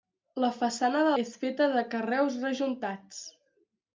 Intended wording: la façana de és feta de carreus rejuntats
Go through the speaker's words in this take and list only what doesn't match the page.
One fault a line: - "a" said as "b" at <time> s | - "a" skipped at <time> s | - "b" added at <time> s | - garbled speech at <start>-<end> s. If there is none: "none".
none